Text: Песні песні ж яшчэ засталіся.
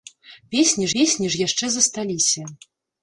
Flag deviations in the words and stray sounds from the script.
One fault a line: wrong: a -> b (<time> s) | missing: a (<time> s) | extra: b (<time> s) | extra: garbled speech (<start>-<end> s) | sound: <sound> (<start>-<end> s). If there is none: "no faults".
no faults